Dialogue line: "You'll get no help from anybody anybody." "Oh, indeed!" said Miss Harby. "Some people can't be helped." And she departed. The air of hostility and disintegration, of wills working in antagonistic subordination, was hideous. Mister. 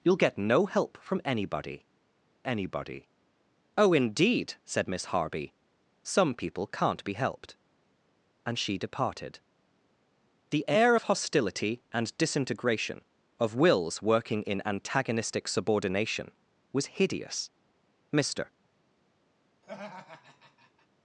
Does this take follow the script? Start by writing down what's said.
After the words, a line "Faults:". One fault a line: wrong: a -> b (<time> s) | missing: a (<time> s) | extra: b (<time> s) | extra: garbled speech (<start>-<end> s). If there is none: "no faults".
"You'll get no help from anybody anybody." "Oh, indeed!" said Miss Harby. "Some people can't be helped." And she departed. The air of hostility and disintegration, of wills working in antagonistic subordination, was hideous. Mister.
Faults:
no faults